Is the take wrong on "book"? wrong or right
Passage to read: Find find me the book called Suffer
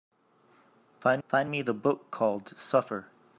right